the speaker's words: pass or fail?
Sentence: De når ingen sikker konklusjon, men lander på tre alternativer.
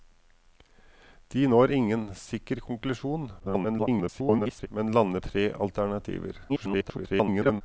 fail